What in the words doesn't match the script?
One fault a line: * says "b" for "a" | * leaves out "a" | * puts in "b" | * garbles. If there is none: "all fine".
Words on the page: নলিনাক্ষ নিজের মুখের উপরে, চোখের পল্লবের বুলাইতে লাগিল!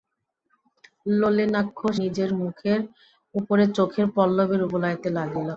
all fine